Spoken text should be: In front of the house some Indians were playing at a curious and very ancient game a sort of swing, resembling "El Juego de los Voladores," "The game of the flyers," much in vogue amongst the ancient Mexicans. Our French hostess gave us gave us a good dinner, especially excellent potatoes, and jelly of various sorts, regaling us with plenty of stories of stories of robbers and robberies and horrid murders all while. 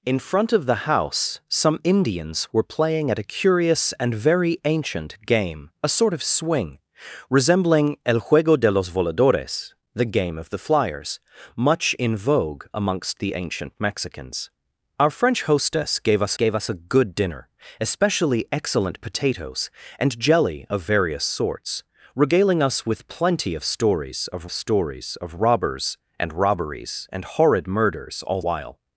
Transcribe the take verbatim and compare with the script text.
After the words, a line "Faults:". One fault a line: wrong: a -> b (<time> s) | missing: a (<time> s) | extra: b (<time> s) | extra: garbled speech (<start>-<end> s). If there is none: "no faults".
In front of the house some Indians were playing at a curious and very ancient game a sort of swing, resembling "El Juego de los Voladores," "The game of the flyers," much in vogue amongst the ancient Mexicans. Our French hostess gave us gave us a good dinner, especially excellent potatoes, and jelly of various sorts, regaling us with plenty of stories of stories of robbers and robberies and horrid murders all while.
Faults:
no faults